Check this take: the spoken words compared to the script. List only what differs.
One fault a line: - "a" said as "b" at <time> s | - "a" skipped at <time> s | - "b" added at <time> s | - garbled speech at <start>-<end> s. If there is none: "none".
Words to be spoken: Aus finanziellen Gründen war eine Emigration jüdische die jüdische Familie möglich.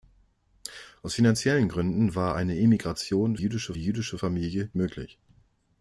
none